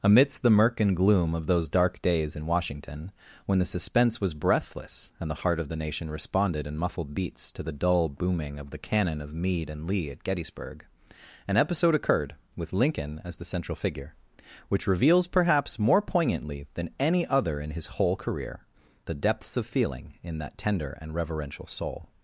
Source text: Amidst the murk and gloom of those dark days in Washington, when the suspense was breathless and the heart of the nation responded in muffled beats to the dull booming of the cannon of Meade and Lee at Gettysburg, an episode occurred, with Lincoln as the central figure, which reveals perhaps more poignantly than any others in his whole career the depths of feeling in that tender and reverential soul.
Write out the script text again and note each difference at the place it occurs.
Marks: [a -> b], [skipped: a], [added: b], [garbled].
Amidst the murk and gloom of those dark days in Washington, when the suspense was breathless and the heart of the nation responded in muffled beats to the dull booming of the cannon of Meade and Lee at Gettysburg, an episode occurred, with Lincoln as the central figure, which reveals perhaps more poignantly than any [others -> other] in his whole career the depths of feeling in that tender and reverential soul.